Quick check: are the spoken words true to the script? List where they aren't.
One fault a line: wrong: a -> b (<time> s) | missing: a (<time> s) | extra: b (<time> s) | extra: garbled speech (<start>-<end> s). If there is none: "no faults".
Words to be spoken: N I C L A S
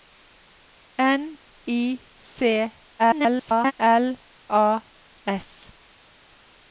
extra: garbled speech (3.0-3.7 s)